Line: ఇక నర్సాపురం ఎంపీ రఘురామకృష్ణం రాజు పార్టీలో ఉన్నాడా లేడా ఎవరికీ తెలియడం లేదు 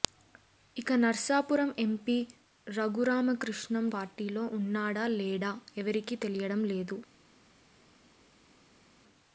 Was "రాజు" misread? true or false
true